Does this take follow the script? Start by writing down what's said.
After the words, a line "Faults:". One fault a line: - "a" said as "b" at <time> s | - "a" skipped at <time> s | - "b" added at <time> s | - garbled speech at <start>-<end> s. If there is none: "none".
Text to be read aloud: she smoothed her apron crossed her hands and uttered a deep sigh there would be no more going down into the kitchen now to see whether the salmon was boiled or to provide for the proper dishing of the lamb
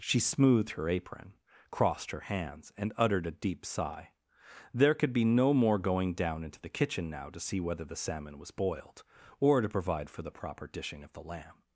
she smoothed her apron crossed her hands and uttered a deep sigh there could be no more going down into the kitchen now to see whether the salmon was boiled or to provide for the proper dishing of the lamb
Faults:
- "would" said as "could" at 5.0 s